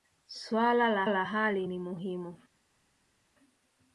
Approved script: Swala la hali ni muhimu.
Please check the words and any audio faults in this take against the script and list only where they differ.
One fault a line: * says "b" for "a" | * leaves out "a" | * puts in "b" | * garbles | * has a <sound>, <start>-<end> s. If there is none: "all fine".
* puts in "la"